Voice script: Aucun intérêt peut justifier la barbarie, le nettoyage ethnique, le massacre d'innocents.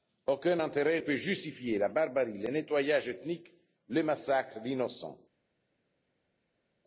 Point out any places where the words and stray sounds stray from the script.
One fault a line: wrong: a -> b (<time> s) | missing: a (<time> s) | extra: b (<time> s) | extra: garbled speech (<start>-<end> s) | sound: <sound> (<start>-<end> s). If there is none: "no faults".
no faults